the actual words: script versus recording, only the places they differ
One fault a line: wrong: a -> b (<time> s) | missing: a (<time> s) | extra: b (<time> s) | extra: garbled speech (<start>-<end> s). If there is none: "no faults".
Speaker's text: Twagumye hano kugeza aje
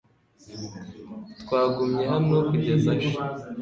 no faults